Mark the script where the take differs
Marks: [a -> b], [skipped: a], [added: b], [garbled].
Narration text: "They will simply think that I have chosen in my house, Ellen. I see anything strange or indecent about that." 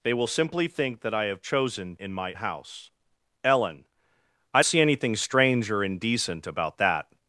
"They will simply think that I have chosen in my house, Ellen. I see anything strange or indecent about that."